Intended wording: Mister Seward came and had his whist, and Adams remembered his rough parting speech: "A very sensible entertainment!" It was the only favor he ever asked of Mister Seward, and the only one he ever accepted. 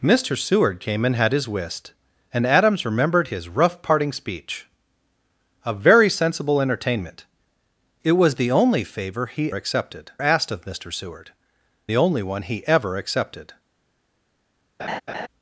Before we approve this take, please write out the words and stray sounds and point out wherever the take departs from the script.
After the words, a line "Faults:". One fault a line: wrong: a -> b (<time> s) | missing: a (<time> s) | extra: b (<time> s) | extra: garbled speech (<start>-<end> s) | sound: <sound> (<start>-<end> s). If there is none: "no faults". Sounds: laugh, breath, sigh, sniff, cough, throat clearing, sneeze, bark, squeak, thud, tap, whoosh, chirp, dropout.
Mister Seward came and had his whist, and Adams remembered his rough parting speech: "A very sensible entertainment!" It was the only favor he accepted asked of Mister Seward, the only one he ever accepted.
Faults:
wrong: ever -> accepted (9.5 s)
missing: and (11.3 s)
sound: laugh (14.8-15.3 s)